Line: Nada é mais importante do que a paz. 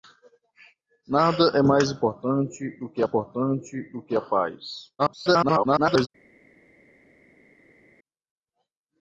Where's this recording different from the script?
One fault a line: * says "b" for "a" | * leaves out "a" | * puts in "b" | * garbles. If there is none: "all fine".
* puts in "importante do que"
* garbles